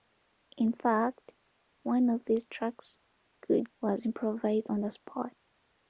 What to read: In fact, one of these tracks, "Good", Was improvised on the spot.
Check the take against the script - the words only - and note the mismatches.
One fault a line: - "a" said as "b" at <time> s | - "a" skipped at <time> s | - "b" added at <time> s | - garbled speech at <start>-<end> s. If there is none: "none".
none